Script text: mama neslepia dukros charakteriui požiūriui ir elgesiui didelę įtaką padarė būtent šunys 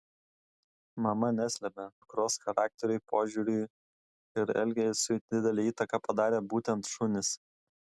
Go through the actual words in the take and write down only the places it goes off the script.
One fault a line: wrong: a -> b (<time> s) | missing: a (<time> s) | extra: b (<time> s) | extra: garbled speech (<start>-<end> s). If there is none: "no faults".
no faults